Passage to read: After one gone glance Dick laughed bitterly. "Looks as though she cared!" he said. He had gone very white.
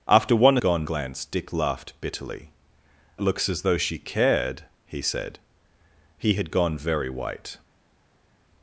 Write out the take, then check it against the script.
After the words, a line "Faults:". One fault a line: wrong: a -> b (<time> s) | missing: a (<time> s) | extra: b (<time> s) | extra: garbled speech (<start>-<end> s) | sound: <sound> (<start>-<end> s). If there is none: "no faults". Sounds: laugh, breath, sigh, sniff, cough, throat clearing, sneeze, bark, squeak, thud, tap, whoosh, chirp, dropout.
After one gone glance Dick laughed bitterly. "Looks as though she cared!" he said. He had gone very white.
Faults:
no faults